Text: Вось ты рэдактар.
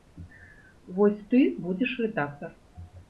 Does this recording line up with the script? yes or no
no